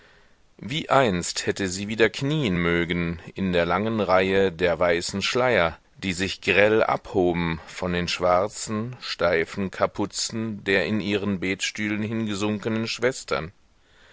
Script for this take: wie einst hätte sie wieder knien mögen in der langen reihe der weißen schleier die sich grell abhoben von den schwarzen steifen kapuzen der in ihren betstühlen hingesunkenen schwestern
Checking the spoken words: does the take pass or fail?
pass